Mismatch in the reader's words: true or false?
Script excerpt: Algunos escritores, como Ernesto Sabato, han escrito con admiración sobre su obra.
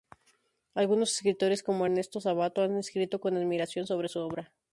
false